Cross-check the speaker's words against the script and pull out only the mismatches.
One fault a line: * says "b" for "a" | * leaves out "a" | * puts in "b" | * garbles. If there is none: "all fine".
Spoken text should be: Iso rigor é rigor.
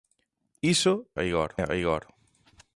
all fine